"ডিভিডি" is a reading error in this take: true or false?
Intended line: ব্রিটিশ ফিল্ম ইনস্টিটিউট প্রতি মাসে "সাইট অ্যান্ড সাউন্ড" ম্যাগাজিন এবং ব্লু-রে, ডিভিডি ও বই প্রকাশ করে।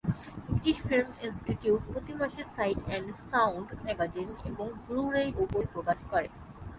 true